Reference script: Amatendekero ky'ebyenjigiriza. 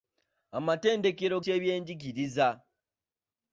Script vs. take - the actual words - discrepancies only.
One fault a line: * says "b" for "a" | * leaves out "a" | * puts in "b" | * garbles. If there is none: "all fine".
all fine